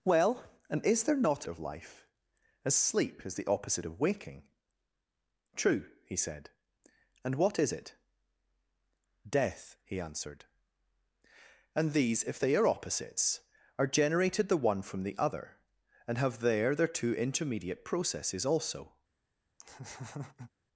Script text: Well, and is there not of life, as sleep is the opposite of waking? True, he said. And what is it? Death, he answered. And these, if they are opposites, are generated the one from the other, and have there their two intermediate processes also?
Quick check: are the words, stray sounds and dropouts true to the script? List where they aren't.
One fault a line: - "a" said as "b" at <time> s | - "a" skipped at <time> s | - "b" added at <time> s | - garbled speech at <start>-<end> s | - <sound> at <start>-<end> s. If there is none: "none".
- laugh at 19.6-20.5 s